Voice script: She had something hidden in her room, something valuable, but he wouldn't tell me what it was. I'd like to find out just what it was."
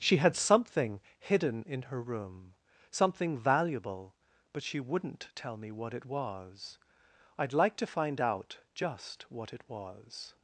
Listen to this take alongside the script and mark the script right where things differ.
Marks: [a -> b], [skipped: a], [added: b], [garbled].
She had something hidden in her room, something valuable, but [he -> she] wouldn't tell me what it was. I'd like to find out just what it was."